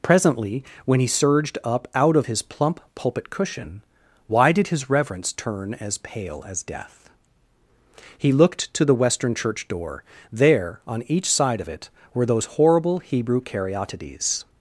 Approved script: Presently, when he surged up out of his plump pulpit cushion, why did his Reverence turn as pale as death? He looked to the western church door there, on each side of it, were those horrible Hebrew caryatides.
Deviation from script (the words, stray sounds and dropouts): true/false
false